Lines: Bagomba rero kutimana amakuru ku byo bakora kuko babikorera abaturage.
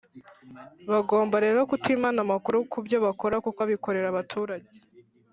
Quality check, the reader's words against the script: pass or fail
pass